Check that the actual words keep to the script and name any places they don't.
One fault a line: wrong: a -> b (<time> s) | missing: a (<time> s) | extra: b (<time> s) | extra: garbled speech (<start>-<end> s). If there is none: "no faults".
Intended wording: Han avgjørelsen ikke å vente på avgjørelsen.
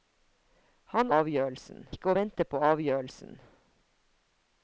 no faults